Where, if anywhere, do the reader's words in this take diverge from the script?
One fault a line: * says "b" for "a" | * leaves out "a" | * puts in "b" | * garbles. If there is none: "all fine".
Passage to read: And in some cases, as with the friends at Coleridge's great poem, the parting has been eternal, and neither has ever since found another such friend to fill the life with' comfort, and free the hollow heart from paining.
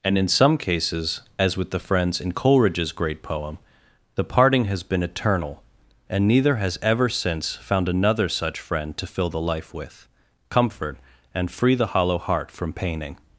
* says "in" for "at"